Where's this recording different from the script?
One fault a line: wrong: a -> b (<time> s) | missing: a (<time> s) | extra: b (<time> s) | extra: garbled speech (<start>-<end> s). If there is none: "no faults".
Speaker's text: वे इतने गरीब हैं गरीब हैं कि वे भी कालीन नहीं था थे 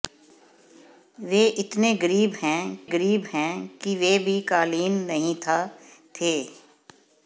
no faults